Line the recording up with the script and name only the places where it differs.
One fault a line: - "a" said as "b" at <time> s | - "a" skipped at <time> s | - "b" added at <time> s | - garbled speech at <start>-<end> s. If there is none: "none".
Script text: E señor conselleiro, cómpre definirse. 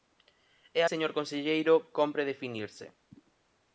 none